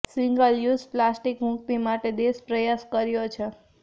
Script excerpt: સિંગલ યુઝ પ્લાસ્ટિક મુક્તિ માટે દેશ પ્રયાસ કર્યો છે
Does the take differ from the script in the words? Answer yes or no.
no